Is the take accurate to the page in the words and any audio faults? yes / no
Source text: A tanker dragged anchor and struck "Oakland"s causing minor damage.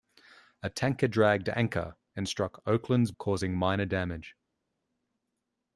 yes